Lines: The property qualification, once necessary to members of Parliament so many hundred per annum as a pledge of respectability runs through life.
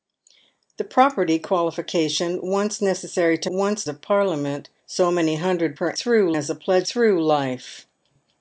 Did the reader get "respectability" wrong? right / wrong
wrong